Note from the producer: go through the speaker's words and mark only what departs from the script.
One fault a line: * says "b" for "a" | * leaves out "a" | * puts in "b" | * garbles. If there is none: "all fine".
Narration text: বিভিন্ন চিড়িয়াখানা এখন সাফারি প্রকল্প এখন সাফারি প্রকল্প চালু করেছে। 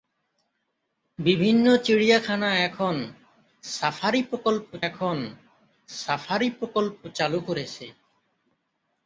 all fine